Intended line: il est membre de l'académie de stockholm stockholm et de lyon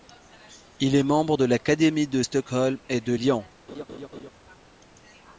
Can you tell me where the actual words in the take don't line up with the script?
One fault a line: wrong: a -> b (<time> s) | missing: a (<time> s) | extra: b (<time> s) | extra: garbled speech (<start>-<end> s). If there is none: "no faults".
missing: stockholm (2.8 s)